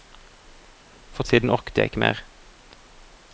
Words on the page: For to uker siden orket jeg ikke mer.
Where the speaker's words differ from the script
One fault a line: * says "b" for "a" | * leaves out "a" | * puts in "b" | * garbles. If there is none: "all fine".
* leaves out "to uker"